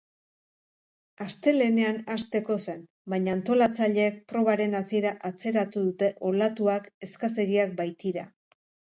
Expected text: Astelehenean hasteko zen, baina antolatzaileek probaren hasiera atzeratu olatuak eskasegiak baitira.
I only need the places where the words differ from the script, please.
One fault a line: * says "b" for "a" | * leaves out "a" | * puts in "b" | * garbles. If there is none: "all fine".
* puts in "dute"